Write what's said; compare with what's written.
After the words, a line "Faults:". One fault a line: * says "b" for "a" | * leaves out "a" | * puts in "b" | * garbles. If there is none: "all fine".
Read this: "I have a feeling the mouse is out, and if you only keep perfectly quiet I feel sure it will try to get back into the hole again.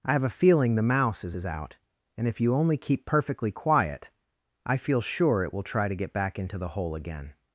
"I have a feeling the mouse is is out, and if you only keep perfectly quiet I feel sure it will try to get back into the hole again.
Faults:
* puts in "is"